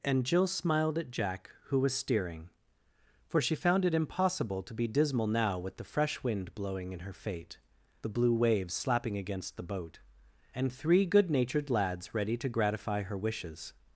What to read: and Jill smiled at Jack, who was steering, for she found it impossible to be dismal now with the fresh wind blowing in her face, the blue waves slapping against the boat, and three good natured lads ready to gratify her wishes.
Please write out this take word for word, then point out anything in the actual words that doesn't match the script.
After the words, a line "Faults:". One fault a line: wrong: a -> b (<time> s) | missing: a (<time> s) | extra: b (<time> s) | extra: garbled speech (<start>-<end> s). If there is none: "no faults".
and Jill smiled at Jack, who was steering, for she found it impossible to be dismal now with the fresh wind blowing in her fate, the blue waves slapping against the boat, and three good natured lads ready to gratify her wishes.
Faults:
wrong: face -> fate (7.1 s)